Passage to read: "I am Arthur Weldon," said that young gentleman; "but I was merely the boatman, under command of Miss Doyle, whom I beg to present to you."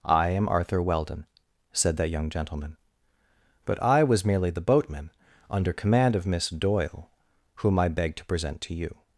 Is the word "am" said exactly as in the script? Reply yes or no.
yes